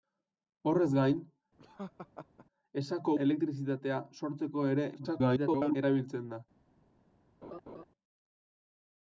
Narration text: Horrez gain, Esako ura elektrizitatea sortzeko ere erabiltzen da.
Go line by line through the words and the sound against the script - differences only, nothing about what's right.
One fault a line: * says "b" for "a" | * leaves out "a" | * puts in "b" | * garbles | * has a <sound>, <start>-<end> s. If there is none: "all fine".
* has a laugh, 1.6-2.5 s
* leaves out "ura"
* garbles
* has a laugh, 7.4-7.8 s